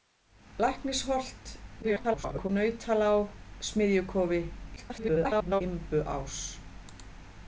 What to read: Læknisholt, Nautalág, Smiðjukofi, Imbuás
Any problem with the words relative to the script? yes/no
yes